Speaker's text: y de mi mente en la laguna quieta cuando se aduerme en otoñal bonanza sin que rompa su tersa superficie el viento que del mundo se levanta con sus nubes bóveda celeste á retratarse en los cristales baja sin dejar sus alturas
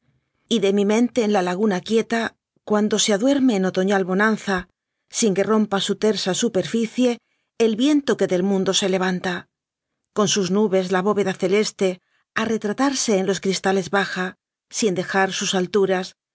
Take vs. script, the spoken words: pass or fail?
fail